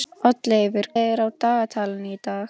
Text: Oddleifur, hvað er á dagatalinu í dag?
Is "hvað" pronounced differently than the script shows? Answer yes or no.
yes